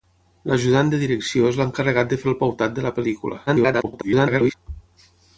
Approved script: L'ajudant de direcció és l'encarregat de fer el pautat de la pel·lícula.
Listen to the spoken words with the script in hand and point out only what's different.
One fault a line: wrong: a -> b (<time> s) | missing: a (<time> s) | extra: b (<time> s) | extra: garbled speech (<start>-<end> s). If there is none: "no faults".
extra: garbled speech (3.5-4.5 s)